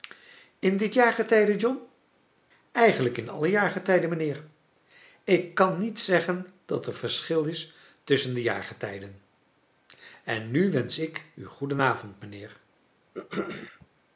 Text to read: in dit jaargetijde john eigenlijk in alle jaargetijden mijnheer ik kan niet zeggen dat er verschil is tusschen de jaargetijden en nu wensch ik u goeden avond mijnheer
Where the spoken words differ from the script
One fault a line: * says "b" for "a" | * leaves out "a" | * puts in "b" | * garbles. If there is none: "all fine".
all fine